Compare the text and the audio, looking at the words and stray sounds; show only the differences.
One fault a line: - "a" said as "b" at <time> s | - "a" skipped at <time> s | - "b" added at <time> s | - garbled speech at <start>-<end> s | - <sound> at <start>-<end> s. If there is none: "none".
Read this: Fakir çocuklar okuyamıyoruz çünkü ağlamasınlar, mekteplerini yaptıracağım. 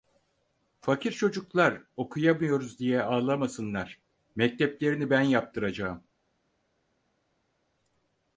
- "çünkü" said as "diye" at 2.8 s
- "ben" added at 5.1 s